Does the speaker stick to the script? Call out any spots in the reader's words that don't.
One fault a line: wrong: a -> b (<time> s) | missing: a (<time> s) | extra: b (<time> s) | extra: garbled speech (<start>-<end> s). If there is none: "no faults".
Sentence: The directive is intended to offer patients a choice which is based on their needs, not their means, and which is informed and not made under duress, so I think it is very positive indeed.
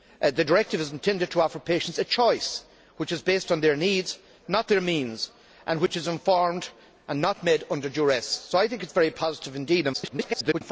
extra: garbled speech (9.9-10.6 s)